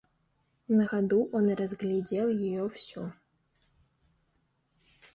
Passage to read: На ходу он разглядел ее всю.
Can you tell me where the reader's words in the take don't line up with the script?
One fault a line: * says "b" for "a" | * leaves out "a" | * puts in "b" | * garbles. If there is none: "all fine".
all fine